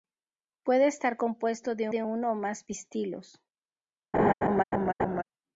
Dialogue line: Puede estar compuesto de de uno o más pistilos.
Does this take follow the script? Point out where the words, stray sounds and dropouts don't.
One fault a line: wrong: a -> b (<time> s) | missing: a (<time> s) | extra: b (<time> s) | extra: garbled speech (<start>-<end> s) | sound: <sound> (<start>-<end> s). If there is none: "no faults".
sound: laugh (4.1-5.2 s)